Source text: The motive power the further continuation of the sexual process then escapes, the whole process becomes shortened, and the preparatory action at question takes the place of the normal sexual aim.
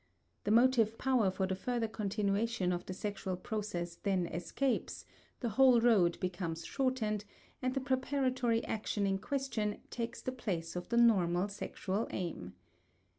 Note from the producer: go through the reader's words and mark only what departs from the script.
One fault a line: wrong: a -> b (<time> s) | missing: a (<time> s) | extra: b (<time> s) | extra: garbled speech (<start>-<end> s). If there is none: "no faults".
extra: for (1.3 s)
wrong: process -> road (5.8 s)
wrong: at -> in (9.1 s)